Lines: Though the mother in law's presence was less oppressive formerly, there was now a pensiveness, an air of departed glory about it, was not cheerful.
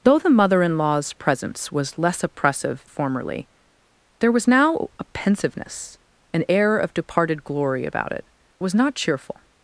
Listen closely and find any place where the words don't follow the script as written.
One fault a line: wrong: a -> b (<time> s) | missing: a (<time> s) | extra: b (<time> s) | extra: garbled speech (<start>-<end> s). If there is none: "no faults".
no faults